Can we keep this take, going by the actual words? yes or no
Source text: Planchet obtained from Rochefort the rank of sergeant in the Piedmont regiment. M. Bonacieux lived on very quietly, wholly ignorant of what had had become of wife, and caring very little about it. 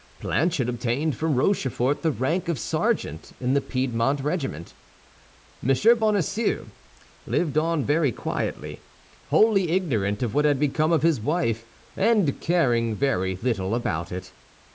no